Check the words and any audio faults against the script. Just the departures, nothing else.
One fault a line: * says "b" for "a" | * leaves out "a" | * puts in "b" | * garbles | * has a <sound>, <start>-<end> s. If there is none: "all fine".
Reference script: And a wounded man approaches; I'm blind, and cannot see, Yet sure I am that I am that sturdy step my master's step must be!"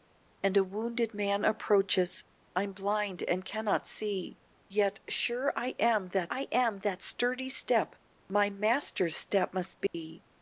* has a dropout, 9.9-9.9 s